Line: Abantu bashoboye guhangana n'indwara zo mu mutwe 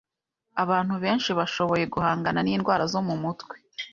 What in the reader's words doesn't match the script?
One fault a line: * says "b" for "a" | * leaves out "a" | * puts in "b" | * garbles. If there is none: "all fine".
* puts in "benshi"